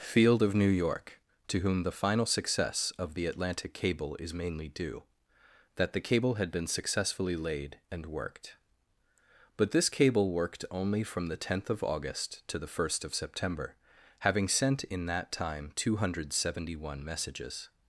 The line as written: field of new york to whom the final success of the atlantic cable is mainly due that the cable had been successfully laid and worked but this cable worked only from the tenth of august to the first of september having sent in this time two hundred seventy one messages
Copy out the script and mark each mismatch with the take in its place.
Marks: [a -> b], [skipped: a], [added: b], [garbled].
field of new york to whom the final success of the atlantic cable is mainly due that the cable had been successfully laid and worked but this cable worked only from the tenth of august to the first of september having sent in [this -> that] time two hundred seventy one messages